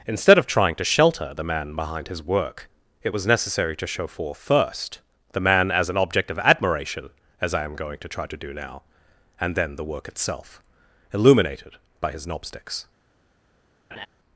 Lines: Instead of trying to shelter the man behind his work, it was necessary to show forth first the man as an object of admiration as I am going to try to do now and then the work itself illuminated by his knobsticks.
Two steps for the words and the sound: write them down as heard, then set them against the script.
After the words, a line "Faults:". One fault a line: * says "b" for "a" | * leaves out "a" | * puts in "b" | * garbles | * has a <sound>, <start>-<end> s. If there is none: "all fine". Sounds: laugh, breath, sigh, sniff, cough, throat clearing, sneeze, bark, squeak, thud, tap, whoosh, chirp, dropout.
Instead of trying to shelter the man behind his work, it was necessary to show forth first the man as an object of admiration as I am going to try to do now and then the work itself illuminated by his knobsticks.
Faults:
* has a laugh, 13.9-14.1 s